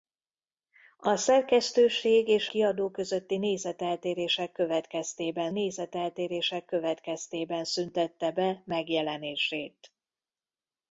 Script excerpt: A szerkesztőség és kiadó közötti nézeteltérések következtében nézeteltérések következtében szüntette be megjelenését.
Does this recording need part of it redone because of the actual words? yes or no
no